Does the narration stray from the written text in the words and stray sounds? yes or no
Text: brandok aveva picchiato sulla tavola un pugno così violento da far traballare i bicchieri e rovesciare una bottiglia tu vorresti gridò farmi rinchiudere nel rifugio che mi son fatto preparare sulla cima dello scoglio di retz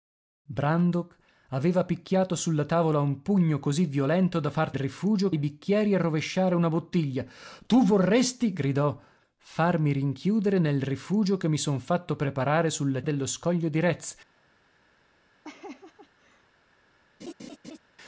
yes